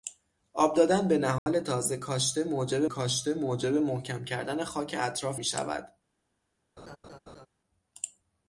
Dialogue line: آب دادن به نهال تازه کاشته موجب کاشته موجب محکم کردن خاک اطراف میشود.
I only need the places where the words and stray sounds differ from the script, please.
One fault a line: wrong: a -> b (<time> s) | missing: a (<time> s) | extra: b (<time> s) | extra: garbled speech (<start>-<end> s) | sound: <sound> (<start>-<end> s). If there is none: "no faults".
sound: dropout (1.4-1.5 s)
sound: laugh (6.8-7.5 s)